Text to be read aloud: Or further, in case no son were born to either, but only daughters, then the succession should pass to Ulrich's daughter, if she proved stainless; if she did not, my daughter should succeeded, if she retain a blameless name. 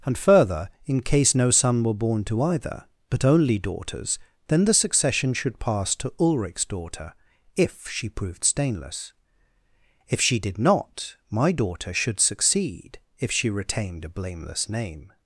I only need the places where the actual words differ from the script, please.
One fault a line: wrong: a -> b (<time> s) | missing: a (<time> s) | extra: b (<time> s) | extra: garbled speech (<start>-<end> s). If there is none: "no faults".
wrong: Or -> And (0.0 s)
wrong: succeeded -> succeed (12.2 s)
wrong: retain -> retained (13.5 s)